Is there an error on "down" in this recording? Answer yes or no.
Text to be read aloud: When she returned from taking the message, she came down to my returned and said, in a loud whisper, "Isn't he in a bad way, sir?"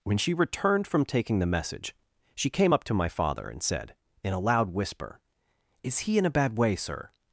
yes